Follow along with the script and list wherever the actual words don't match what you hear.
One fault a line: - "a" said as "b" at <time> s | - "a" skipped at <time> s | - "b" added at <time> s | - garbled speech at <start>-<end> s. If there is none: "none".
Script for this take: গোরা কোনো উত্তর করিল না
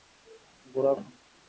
- "কোনো উত্তর করিল" skipped at 0.9 s